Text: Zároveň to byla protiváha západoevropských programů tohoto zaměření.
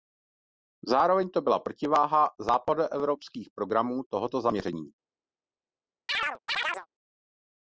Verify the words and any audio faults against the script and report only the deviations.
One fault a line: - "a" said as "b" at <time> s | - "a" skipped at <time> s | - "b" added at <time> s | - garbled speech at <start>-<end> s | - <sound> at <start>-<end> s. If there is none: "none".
- chirp at 6.1-6.9 s